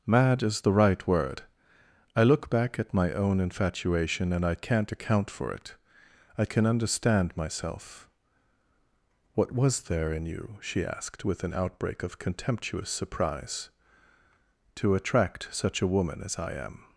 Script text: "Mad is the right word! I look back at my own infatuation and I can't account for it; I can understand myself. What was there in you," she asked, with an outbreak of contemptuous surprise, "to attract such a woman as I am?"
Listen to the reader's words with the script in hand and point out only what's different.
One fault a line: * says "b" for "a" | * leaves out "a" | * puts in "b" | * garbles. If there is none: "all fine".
all fine